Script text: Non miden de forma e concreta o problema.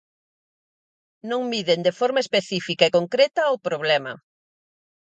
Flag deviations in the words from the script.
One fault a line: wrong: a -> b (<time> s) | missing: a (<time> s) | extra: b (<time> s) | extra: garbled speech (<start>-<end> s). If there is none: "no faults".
extra: específica (2.2 s)